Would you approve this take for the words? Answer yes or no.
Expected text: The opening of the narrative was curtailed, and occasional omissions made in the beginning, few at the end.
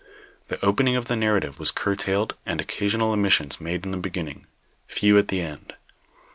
yes